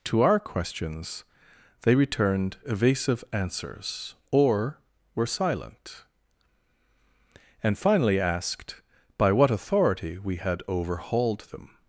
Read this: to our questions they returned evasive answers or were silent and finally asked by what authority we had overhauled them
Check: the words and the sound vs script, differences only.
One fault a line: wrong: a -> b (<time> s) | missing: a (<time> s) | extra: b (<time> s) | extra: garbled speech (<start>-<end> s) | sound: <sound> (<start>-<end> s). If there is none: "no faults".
no faults